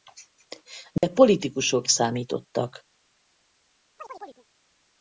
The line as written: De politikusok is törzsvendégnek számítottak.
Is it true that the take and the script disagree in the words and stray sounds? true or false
true